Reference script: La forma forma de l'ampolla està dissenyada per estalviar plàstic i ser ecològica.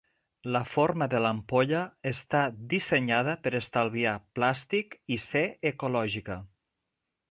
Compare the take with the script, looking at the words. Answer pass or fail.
fail